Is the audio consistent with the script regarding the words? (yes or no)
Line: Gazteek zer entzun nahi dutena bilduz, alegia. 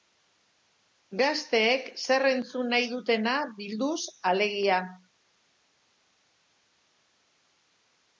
yes